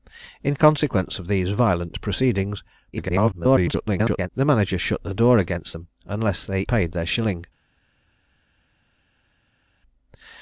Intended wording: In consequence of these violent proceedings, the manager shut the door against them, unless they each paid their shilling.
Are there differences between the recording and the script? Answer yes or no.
yes